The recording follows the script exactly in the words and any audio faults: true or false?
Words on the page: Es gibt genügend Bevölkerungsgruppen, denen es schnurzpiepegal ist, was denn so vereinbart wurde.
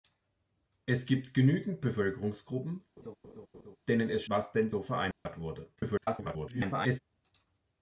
false